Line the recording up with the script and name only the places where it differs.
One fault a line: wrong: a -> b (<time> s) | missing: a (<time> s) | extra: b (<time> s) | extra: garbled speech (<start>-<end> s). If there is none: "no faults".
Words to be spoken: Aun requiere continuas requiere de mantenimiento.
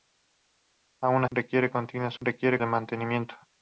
no faults